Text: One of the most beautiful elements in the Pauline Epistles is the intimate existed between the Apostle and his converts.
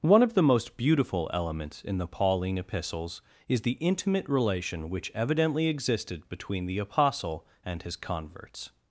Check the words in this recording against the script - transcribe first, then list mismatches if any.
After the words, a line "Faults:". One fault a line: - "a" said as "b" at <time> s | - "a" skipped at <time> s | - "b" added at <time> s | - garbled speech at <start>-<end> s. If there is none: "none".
One of the most beautiful elements in the Pauline Epistles is the intimate relation which evidently existed between the Apostle and his converts.
Faults:
- "relation which evidently" added at 4.3 s